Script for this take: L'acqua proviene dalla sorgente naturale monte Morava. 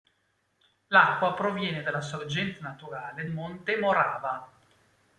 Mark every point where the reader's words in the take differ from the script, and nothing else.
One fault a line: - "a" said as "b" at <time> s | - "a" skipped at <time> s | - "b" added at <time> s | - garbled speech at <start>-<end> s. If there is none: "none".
none